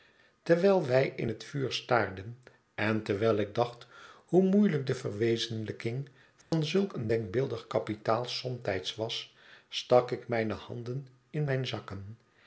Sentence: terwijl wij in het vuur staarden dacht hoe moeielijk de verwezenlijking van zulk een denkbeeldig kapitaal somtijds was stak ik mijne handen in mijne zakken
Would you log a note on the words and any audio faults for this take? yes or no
yes